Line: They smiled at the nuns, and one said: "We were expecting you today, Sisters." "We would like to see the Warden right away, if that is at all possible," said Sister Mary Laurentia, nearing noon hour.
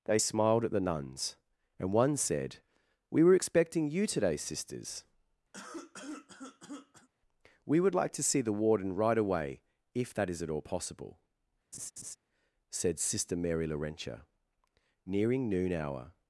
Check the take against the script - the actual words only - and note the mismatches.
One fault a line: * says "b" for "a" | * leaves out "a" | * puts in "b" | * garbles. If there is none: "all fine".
all fine